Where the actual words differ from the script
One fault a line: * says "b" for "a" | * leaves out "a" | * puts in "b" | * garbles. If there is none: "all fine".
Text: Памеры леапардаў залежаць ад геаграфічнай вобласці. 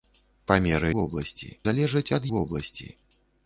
* says "вобласці" for "леапардаў"
* leaves out "геаграфічнай"